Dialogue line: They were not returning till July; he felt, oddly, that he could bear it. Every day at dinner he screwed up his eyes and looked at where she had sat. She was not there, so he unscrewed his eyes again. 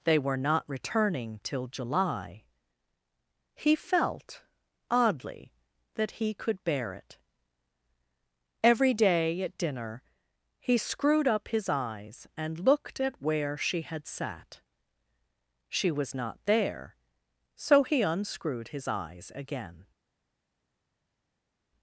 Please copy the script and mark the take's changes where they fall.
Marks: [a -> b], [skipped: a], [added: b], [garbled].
They were not returning till July; he felt, oddly, that he could bear it. Every day at dinner he screwed up his eyes and looked at where she had sat. She was not there, so he unscrewed his eyes again.